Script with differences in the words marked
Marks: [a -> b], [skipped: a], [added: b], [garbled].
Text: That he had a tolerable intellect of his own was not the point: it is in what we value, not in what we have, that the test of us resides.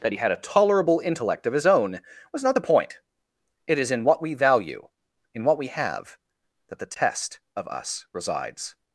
That he had a tolerable intellect of his own was not the point: it is in what we value, [skipped: not] in what we have, that the test of us resides.